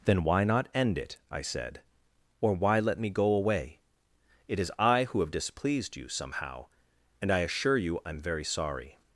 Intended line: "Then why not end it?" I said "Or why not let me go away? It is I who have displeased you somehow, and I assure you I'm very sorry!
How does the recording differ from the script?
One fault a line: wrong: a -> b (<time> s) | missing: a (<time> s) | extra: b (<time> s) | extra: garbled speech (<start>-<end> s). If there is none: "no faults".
missing: not (2.8 s)